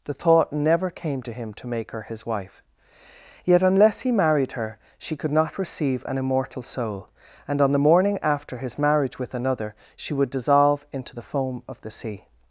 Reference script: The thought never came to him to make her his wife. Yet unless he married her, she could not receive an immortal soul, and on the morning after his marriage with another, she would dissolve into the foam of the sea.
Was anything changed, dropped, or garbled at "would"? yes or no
no